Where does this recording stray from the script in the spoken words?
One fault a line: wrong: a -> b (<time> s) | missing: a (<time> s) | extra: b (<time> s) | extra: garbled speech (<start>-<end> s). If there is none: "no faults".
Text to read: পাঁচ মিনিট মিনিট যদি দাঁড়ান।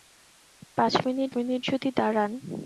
no faults